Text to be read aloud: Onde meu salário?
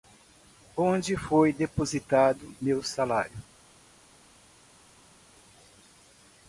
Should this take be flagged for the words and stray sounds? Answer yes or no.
yes